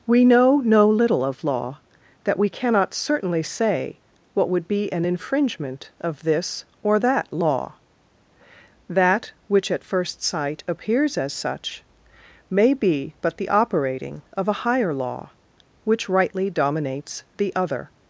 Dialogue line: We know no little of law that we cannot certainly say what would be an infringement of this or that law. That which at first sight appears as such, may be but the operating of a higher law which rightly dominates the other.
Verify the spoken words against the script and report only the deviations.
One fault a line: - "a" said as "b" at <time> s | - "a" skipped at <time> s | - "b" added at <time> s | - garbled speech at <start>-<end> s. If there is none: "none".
none